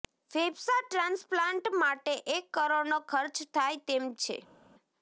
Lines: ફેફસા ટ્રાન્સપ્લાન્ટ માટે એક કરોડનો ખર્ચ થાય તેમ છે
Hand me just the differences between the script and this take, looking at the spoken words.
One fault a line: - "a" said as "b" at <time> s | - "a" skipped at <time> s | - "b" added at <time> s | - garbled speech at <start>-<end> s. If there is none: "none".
none